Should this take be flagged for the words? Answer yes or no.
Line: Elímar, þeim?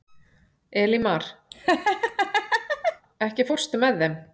yes